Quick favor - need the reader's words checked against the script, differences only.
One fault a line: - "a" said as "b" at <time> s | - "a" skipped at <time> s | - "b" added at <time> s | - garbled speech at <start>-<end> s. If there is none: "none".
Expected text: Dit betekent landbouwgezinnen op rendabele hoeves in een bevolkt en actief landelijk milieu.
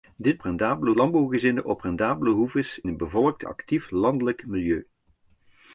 - "betekent" said as "rendabele" at 0.4 s
- "in" skipped at 2.8 s
- "en" skipped at 3.4 s